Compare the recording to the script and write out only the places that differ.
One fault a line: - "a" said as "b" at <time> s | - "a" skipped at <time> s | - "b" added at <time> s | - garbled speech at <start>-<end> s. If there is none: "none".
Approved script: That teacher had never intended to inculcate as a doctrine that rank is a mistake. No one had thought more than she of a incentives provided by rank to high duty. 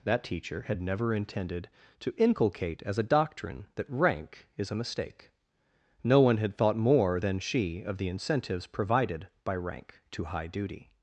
- "a" said as "the" at 8.0 s